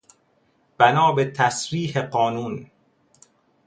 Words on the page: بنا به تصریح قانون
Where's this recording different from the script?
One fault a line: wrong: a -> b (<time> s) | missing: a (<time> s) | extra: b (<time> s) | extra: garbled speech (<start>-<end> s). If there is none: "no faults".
no faults